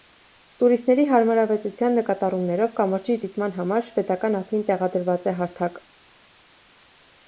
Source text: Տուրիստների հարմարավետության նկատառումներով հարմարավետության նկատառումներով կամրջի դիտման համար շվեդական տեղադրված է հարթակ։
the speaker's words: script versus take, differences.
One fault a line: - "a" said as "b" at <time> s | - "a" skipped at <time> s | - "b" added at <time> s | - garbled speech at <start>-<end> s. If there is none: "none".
- "հարմարավետության նկատառումներով" skipped at 2.8 s
- "ափին" added at 4.4 s